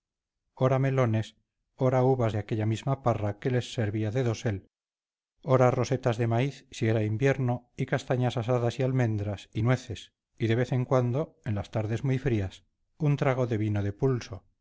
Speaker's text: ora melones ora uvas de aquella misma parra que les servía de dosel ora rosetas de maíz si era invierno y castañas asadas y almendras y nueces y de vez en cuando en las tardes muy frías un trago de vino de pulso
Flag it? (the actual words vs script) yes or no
no